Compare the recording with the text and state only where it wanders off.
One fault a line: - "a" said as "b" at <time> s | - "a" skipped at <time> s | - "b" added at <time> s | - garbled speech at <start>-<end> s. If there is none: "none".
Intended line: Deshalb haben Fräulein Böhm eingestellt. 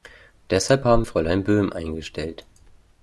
none